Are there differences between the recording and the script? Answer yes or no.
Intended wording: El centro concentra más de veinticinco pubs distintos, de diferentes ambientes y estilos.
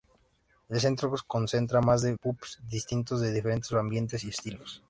yes